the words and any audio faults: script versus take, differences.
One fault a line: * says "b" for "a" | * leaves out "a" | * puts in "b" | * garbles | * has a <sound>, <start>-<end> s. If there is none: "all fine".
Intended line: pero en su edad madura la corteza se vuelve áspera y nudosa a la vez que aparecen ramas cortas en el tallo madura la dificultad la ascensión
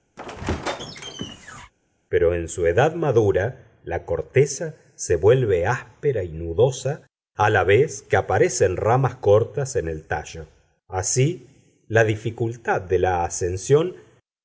* has a squeak, 0.2-1.7 s
* says "así" for "madura"
* puts in "de"